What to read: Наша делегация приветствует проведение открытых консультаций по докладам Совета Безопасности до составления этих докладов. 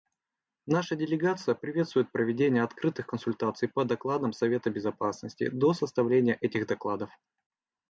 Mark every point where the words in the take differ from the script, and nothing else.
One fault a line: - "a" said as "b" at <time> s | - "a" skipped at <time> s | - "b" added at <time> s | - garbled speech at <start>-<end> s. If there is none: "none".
none